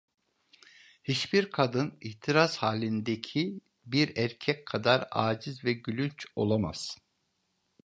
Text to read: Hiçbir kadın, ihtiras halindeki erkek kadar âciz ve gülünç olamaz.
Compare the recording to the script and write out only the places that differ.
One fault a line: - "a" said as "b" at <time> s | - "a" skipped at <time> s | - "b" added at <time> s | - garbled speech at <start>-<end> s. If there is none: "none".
- "bir" added at 3.8 s